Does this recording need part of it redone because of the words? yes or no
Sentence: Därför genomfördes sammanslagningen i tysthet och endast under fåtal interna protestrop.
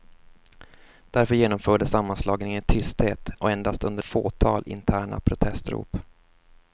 no